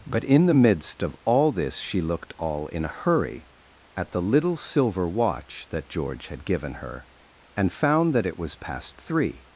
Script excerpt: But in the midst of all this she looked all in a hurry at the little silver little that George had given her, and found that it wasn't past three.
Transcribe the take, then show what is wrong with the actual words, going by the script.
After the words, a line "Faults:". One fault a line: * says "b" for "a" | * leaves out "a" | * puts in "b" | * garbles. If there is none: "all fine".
But in the midst of all this she looked all in a hurry at the little silver watch that George had given her, and found that it was past three.
Faults:
* says "watch" for "little"
* says "was" for "wasn't"